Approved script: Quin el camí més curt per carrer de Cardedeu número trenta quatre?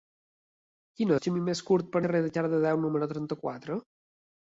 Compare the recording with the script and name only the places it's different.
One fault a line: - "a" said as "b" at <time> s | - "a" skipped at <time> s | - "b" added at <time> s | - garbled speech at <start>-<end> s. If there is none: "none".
none